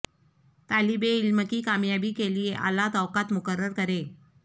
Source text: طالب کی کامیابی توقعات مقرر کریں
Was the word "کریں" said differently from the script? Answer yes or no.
no